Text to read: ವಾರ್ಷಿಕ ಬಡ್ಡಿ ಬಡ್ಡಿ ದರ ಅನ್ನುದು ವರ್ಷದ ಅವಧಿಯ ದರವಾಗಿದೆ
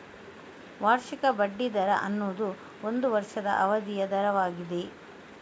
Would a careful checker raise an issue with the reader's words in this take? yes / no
yes